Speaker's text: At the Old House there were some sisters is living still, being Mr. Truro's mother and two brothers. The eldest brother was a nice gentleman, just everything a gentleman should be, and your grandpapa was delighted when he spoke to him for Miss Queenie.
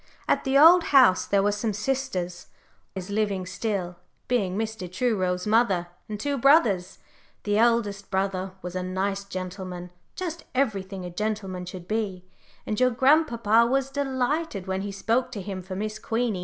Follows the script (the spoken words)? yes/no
yes